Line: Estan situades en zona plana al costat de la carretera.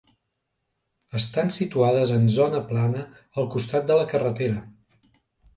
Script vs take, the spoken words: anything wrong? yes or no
no